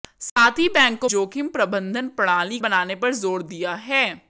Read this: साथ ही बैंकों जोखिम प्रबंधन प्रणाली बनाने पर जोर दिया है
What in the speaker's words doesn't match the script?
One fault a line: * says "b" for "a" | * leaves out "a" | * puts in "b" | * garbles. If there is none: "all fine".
all fine